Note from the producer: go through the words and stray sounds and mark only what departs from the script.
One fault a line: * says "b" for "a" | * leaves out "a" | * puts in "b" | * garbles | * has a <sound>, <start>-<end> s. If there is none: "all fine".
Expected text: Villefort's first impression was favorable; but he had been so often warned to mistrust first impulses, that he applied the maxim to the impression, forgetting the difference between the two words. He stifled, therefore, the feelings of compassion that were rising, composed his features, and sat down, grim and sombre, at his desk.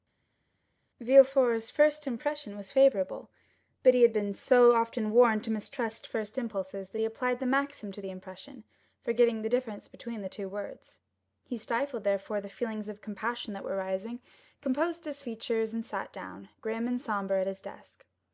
all fine